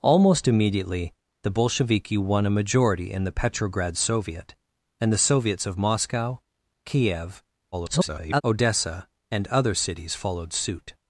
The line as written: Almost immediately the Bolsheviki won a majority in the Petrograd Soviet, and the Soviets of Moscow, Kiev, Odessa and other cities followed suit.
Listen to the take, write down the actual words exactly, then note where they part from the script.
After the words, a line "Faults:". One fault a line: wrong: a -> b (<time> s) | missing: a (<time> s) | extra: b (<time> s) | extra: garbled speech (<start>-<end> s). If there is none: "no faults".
Almost immediately the Bolsheviki won a majority in the Petrograd Soviet, and the Soviets of Moscow, Kiev, [garbled] Odessa and other cities followed suit.
Faults:
extra: garbled speech (7.7-8.4 s)